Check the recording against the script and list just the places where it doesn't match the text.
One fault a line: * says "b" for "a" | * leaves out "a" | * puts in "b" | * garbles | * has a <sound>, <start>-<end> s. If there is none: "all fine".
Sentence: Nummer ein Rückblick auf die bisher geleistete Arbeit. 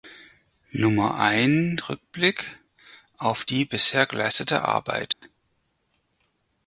* has a dropout, 5.1-5.2 s